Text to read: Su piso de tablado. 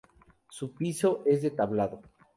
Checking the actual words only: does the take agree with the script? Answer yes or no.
no